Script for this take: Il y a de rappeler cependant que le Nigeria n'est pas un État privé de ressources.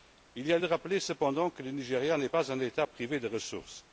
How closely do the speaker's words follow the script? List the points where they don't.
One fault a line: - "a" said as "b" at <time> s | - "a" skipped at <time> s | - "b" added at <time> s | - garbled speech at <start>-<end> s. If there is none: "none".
none